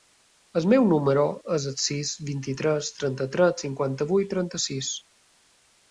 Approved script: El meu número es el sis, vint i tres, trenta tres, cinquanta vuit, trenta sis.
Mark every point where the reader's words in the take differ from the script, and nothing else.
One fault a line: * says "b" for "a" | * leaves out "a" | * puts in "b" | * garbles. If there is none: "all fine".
all fine